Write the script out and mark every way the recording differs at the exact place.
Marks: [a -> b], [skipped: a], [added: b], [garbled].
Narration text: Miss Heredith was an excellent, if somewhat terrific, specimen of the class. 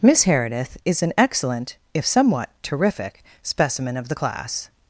Miss Heredith [was -> is] an excellent, if somewhat terrific, specimen of the class.